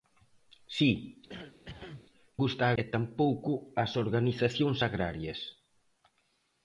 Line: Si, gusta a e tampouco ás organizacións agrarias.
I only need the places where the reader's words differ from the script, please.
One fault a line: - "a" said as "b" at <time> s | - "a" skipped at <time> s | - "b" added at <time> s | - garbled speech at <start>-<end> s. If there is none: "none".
none